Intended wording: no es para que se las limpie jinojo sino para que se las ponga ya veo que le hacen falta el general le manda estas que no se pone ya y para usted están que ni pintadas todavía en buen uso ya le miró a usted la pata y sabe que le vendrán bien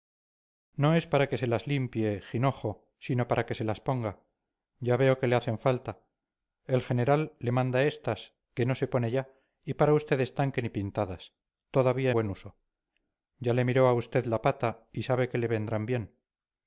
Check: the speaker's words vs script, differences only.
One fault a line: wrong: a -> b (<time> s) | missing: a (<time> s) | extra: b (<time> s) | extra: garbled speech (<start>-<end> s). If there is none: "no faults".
missing: en (12.1 s)